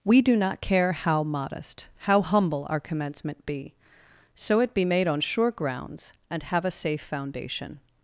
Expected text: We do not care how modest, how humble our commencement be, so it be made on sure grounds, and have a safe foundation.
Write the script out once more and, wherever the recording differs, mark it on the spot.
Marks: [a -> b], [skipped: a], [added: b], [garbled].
We do not care how modest, how humble our commencement be, so it be made on sure grounds, and have a safe foundation.